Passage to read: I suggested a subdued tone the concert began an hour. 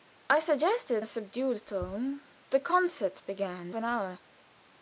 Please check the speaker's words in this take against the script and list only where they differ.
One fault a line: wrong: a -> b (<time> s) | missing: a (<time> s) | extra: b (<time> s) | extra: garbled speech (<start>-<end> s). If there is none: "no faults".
no faults